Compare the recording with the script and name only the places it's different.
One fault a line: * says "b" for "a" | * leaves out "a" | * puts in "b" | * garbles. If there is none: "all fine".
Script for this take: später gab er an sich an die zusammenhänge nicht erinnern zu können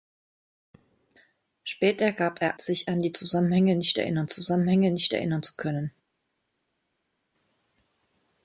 * leaves out "an"
* puts in "zusammenhänge nicht erinnern"